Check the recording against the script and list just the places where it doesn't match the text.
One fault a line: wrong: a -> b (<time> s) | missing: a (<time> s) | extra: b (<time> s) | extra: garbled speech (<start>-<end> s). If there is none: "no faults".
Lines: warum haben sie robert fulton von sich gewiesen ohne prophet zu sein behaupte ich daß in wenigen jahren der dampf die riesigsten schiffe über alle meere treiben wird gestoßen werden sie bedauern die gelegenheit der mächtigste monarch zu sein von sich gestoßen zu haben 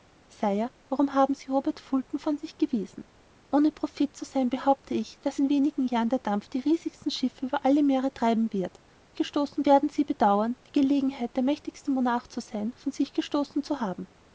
no faults